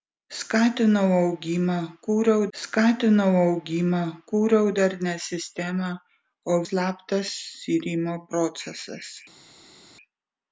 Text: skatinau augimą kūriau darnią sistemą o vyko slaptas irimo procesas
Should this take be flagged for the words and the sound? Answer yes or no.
yes